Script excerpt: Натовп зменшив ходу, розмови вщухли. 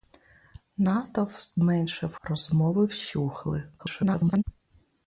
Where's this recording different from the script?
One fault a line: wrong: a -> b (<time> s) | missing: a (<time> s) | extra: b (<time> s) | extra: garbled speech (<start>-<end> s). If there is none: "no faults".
missing: ходу (2.1 s)
extra: garbled speech (3.8-4.4 s)